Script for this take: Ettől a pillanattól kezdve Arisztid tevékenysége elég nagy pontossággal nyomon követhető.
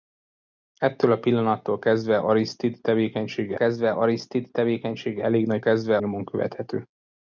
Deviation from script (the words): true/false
true